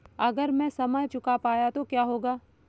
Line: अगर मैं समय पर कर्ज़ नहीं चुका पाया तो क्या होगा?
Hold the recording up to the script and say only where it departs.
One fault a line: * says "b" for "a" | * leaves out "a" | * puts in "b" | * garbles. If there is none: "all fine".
* leaves out "पर कर्ज़ नहीं"